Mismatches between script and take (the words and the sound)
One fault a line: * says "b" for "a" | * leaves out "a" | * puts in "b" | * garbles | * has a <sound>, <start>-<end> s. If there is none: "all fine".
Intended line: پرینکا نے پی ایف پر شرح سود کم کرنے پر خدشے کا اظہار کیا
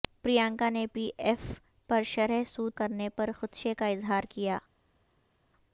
* leaves out "کم"